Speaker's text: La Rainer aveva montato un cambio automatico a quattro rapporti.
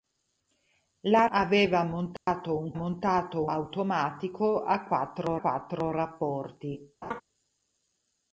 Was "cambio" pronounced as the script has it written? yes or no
no